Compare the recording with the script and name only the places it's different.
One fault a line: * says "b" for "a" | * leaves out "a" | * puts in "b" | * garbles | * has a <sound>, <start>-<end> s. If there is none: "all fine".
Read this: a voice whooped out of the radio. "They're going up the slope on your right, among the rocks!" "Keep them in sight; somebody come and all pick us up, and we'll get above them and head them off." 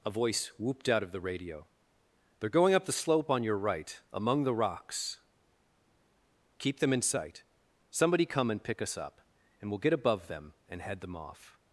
* leaves out "all"